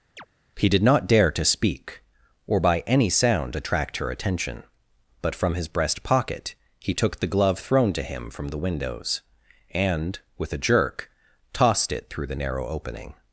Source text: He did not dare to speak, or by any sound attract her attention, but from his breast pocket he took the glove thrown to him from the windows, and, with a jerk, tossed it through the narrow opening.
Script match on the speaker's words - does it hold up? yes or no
yes